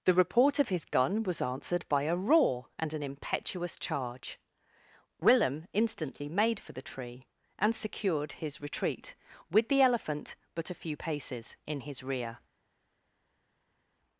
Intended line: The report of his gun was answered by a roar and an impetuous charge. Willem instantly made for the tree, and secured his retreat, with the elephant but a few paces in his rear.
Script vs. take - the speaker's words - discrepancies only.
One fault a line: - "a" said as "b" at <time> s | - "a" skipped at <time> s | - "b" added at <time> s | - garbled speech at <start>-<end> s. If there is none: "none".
none